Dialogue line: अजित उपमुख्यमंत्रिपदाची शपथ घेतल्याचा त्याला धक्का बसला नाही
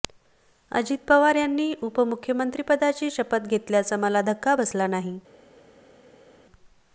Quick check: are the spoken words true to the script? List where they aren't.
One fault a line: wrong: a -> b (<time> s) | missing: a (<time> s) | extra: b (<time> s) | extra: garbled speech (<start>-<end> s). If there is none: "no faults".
extra: पवार यांनी (1.1 s)
wrong: त्याला -> मला (4.0 s)